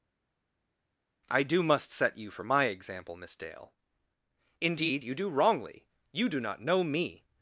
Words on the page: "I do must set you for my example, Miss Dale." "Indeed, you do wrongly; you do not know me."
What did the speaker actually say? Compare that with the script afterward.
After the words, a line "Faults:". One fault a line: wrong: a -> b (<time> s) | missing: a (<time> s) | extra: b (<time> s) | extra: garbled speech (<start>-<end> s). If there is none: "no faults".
"I do must set you for my example, Miss Dale." "Indeed, you do wrongly; you do not know me."
Faults:
no faults